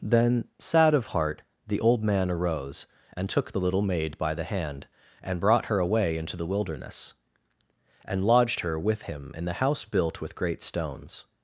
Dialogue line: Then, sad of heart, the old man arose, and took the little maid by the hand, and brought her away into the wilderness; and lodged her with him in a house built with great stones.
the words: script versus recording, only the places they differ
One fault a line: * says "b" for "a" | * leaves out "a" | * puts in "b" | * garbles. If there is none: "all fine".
* says "the" for "a"